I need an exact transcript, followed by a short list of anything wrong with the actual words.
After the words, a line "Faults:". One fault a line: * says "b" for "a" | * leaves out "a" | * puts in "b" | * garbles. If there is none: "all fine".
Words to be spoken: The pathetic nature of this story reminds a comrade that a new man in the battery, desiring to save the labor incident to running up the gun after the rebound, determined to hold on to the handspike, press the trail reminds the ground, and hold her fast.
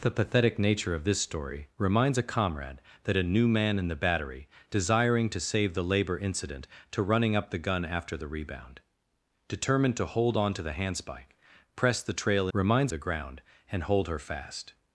The pathetic nature of this story reminds a comrade that a new man in the battery, desiring to save the labor incident to running up the gun after the rebound, determined to hold on to the handspike, press the trail reminds the ground, and hold her fast.
Faults:
all fine